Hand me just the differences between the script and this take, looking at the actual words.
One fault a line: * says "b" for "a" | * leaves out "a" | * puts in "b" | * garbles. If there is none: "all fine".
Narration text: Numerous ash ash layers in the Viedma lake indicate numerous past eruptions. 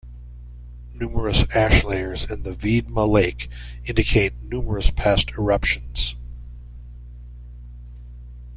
* leaves out "ash"